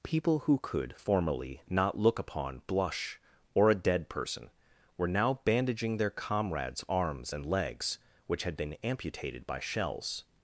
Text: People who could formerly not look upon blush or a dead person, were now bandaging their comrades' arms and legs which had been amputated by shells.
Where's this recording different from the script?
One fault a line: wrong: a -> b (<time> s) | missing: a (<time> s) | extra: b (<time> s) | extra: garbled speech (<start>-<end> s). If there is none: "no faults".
no faults